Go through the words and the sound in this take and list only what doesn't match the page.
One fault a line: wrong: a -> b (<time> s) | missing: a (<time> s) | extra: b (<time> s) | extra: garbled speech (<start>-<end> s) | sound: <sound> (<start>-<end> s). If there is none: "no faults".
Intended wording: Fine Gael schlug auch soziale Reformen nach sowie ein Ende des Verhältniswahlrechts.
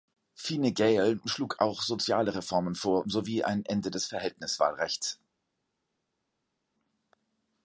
wrong: nach -> vor (2.7 s)